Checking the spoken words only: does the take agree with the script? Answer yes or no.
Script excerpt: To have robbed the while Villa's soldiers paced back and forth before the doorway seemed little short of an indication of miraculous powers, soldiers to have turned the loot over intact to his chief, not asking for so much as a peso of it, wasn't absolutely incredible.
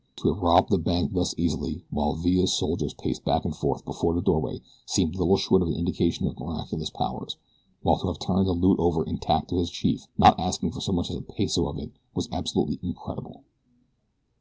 no